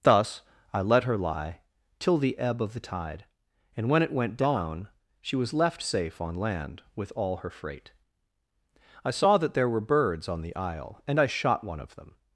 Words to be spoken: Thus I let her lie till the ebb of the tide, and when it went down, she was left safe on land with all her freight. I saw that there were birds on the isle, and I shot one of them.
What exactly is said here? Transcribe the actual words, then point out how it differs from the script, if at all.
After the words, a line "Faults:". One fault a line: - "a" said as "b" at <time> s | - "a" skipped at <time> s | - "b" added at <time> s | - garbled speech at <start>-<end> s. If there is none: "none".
Thus I let her lie till the ebb of the tide, and when it went down, she was left safe on land with all her freight. I saw that there were birds on the isle, and I shot one of them.
Faults:
none